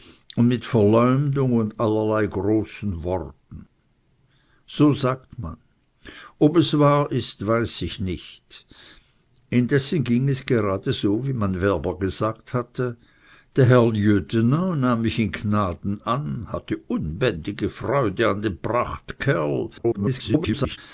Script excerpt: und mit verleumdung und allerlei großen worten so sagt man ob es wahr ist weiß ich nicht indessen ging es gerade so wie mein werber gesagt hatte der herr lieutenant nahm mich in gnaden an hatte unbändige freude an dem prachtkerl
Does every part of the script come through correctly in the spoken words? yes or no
no